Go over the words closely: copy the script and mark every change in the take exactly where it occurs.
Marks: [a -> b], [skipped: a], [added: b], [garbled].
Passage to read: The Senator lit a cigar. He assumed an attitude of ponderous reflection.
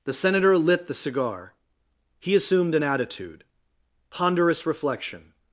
The Senator lit [a -> the] cigar. He assumed an attitude [skipped: of] ponderous reflection.